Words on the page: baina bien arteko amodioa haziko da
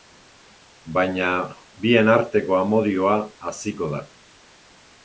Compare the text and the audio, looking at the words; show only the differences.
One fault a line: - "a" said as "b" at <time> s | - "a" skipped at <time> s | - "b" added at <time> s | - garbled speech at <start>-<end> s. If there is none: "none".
none